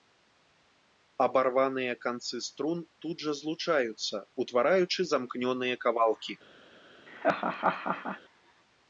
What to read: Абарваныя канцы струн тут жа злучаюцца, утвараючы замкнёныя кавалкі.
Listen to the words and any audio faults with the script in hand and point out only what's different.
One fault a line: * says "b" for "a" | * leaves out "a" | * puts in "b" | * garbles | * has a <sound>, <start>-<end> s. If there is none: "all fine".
* has a laugh, 7.1-8.2 s